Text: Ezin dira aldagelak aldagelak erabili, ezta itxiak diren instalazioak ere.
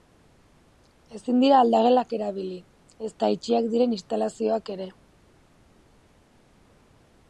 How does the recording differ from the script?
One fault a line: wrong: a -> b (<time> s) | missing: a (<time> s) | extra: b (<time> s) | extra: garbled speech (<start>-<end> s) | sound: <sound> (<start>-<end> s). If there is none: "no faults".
missing: aldagelak (2.1 s)